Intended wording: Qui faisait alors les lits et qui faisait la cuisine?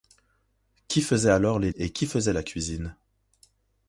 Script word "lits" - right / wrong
wrong